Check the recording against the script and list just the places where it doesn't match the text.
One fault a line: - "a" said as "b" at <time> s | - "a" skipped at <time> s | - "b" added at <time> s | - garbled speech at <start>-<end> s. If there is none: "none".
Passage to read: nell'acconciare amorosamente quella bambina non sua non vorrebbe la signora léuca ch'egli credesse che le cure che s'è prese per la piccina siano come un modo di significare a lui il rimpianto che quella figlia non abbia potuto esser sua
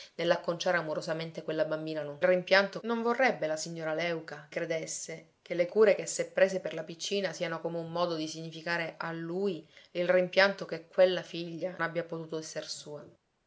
- "sua" said as "rimpianto" at 2.2 s
- "ch'egli" skipped at 4.5 s
- "non" skipped at 11.8 s